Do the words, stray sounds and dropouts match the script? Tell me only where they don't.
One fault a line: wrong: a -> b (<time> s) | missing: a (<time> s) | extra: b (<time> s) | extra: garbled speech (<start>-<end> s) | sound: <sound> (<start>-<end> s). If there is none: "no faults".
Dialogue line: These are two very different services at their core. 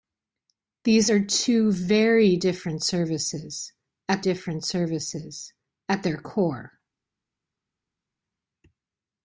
extra: different services at (4.2 s)